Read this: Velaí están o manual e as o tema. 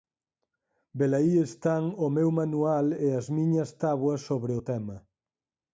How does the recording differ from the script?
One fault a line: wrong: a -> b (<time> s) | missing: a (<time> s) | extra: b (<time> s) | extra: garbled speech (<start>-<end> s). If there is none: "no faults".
extra: meu (2.2 s)
extra: miñas táboas sobre (3.4 s)